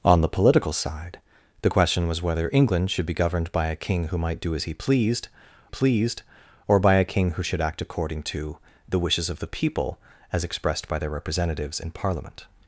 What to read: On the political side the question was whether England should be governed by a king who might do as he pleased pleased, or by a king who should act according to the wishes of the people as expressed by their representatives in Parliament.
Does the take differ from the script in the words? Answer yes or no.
no